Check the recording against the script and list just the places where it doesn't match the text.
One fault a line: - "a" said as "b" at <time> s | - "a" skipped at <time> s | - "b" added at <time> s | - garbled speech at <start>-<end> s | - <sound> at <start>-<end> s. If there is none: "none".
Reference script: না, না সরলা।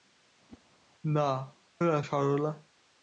- whoosh at 0.5-0.6 s